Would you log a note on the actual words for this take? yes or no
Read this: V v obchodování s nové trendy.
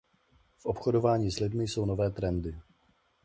yes